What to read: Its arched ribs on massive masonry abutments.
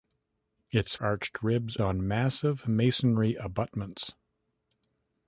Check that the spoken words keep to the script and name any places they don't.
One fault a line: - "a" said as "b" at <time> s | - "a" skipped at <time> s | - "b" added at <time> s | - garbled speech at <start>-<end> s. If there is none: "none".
none